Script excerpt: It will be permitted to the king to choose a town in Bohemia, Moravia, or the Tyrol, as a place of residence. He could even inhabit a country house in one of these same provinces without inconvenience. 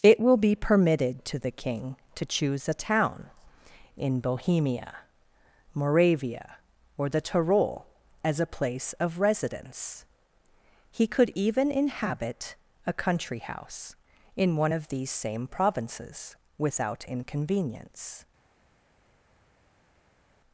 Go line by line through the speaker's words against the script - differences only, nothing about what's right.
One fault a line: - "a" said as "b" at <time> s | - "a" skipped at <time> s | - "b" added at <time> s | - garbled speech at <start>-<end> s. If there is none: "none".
none